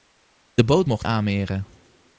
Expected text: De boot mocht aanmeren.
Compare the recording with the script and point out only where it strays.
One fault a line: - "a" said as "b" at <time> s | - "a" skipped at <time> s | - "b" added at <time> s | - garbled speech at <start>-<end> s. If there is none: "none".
none